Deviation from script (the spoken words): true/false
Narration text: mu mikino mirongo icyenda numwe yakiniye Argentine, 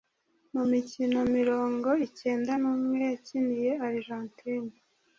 false